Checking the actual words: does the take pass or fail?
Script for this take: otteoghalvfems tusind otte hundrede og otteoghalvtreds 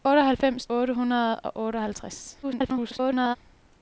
fail